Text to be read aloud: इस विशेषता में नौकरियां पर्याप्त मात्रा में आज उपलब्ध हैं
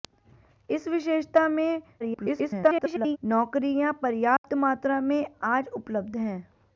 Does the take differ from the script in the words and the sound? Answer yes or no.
yes